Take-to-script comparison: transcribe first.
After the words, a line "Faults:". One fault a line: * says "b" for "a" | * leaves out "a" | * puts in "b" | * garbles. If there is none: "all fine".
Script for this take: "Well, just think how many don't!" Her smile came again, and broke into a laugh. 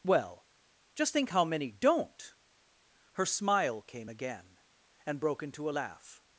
"Well, just think how many don't!" Her smile came again, and broke into a laugh.
Faults:
all fine